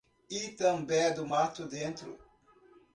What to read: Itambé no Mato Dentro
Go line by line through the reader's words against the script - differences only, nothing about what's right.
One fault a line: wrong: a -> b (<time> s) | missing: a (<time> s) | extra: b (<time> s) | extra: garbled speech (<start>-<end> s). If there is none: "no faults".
wrong: no -> do (1.1 s)